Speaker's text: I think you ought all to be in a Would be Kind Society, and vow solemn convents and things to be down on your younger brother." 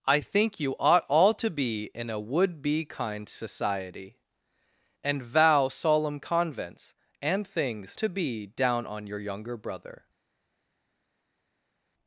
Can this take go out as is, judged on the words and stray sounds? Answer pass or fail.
pass